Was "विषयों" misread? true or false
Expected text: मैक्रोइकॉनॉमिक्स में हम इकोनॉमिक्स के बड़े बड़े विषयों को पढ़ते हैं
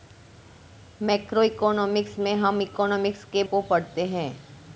true